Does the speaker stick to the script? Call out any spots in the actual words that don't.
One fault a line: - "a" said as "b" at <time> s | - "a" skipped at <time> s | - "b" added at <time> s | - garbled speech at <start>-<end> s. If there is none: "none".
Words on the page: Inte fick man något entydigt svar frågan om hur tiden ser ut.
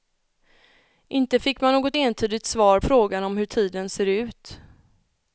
none